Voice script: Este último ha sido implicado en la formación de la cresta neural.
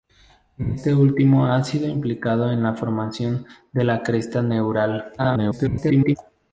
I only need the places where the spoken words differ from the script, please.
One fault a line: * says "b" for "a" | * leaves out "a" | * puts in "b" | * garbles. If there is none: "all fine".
* garbles